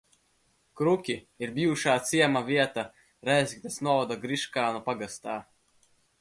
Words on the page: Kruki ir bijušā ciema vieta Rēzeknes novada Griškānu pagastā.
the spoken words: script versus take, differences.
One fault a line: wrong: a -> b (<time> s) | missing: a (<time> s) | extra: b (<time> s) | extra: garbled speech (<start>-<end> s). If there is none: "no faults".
no faults